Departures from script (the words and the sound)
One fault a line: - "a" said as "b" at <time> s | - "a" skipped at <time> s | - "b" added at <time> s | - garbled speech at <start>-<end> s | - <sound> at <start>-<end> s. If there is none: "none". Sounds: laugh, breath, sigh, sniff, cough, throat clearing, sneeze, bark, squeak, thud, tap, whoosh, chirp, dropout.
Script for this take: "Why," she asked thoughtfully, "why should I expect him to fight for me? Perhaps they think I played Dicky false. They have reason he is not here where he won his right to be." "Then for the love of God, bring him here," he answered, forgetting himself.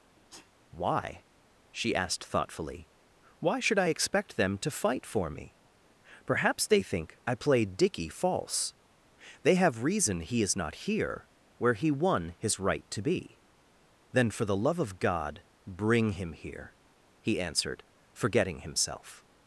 - sneeze at 0.2-0.5 s
- "him" said as "them" at 4.4 s